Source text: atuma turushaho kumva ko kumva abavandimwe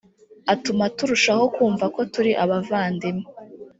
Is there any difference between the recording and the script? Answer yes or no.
yes